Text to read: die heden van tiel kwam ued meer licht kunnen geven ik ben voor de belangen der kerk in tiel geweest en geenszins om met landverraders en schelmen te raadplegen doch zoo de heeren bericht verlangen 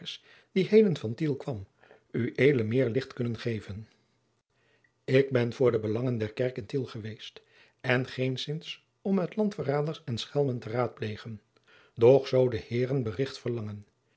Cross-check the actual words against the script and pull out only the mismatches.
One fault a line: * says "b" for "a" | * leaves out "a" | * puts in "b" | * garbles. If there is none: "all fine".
all fine